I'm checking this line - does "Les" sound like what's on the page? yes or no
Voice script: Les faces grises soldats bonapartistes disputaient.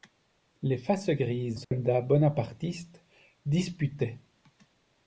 yes